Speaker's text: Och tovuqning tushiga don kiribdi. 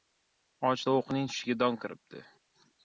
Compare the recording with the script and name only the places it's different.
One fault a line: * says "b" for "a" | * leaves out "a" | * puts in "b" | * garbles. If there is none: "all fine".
all fine